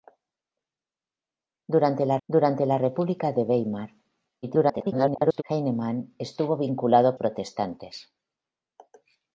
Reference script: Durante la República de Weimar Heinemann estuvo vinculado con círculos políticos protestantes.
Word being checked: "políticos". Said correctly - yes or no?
no